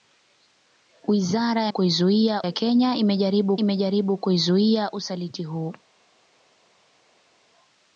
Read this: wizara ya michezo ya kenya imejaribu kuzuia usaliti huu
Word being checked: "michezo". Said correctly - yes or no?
no